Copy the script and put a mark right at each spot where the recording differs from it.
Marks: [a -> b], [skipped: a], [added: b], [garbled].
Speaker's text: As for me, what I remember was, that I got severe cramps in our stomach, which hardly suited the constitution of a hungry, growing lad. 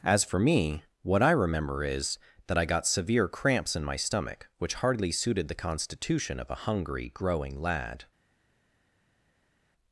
As for me, what I remember [was, -> is] that I got severe cramps in [our -> my] stomach, which hardly suited the constitution of a hungry, growing lad.